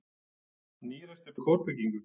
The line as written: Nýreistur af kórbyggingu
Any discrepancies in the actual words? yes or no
no